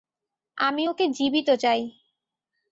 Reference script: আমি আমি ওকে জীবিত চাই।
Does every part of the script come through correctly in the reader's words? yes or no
no